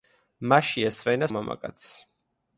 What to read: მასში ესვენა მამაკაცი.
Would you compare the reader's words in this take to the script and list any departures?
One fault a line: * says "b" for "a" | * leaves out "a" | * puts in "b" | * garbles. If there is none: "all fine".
all fine